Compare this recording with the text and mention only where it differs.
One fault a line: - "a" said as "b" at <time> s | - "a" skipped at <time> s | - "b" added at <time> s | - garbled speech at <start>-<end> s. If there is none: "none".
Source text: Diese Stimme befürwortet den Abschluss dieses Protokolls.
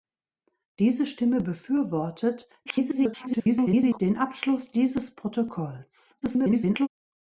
- garbled speech at 2.7-4.0 s
- garbled speech at 6.2-6.9 s